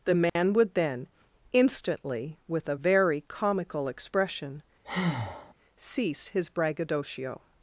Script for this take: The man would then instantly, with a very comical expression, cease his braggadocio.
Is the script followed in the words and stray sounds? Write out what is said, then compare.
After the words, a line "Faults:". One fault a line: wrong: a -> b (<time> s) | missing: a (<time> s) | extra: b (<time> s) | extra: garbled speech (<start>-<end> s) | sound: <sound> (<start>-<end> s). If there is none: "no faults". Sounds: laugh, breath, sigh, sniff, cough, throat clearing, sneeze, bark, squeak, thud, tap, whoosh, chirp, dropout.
The man would then instantly, with a very comical expression, cease his braggadocio.
Faults:
sound: dropout (0.3-0.4 s)
sound: breath (4.8-5.5 s)